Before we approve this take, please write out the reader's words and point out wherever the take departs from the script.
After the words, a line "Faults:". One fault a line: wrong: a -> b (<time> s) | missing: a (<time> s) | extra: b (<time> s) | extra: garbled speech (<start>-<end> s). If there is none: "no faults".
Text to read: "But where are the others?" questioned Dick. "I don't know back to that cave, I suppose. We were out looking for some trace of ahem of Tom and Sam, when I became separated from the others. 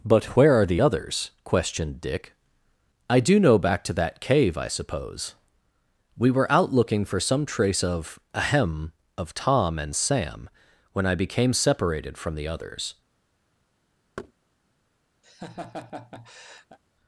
"But where are the others?" questioned Dick. "I do know back to that cave, I suppose. We were out looking for some trace of ahem of Tom and Sam, when I became separated from the others.
Faults:
wrong: don't -> do (3.2 s)